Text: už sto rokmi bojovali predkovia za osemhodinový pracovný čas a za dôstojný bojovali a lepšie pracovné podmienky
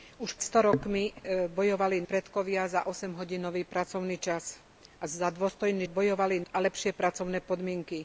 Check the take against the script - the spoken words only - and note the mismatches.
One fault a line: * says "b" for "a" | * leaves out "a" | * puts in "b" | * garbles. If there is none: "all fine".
all fine